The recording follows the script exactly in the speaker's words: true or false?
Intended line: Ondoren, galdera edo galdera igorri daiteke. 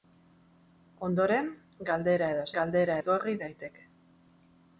true